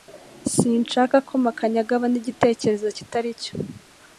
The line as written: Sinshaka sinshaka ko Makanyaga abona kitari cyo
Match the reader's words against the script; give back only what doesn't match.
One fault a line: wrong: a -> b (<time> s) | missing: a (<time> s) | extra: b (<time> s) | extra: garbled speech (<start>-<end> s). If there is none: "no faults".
missing: sinshaka (1.1 s)
extra: igitekerezo (2.2 s)